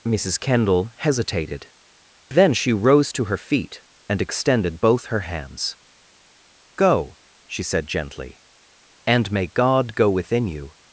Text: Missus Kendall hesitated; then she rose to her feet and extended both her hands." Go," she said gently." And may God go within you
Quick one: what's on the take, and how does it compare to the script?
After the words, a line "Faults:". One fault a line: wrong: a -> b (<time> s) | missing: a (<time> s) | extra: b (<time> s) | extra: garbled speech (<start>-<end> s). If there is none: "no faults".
Missus Kendall hesitated; then she rose to her feet and extended both her hands." Go," she said gently." And may God go within you
Faults:
no faults